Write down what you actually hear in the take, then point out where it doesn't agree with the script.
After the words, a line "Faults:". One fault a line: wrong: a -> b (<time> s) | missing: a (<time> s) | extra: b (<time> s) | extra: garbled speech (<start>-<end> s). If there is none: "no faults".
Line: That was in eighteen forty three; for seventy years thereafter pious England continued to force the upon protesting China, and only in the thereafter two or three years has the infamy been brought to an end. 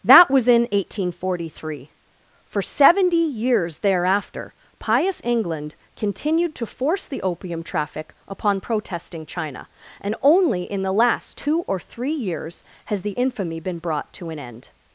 That was in eighteen forty three; for seventy years thereafter pious England continued to force the opium traffic upon protesting China, and only in the last two or three years has the infamy been brought to an end.
Faults:
extra: opium traffic (7.2 s)
wrong: thereafter -> last (10.9 s)